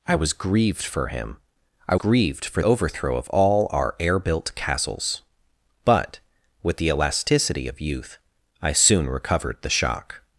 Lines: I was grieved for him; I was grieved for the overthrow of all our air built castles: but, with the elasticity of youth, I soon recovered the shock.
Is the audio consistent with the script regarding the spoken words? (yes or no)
no